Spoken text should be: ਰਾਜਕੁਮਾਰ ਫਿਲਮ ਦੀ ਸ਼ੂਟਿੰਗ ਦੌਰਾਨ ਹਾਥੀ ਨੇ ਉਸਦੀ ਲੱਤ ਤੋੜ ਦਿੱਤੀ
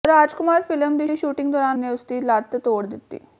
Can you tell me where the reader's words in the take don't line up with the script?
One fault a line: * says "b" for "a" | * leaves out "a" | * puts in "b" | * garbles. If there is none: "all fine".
* puts in "ਦੀ"
* leaves out "ਹਾਥੀ"